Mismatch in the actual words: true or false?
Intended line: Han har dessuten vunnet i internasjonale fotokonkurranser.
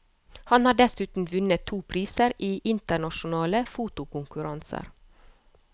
true